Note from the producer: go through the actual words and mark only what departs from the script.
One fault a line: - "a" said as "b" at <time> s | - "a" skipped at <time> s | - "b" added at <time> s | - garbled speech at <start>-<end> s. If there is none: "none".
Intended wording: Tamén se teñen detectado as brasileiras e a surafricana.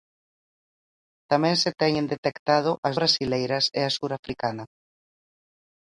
none